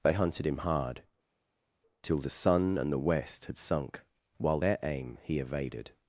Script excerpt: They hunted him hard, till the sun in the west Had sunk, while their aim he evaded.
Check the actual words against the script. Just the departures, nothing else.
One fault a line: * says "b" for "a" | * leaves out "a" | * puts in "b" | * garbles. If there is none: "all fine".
* says "and" for "in"